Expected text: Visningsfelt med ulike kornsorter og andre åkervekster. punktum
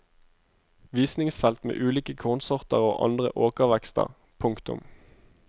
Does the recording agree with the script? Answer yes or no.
yes